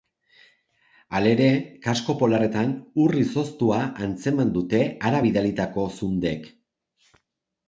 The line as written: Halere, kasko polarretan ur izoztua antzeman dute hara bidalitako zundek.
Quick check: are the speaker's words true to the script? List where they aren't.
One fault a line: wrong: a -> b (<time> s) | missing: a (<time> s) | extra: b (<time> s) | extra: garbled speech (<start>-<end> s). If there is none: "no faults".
no faults